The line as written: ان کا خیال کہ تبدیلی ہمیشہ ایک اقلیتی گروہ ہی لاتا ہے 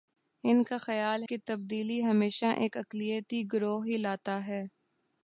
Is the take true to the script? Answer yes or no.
yes